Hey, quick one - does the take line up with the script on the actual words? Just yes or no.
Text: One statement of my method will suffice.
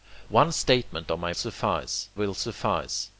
no